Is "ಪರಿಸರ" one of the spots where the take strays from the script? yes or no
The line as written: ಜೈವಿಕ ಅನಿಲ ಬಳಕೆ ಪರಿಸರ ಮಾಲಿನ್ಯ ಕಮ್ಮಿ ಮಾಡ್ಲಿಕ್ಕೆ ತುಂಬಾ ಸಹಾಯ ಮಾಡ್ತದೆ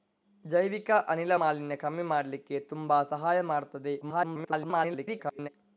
yes